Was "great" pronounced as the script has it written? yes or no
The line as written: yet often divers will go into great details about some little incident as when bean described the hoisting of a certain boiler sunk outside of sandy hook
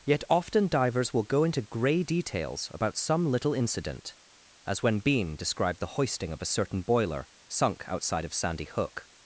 no